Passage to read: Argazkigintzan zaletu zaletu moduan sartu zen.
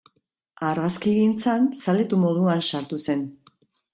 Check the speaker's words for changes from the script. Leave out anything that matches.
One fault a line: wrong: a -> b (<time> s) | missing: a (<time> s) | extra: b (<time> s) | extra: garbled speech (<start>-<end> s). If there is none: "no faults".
missing: zaletu (2.2 s)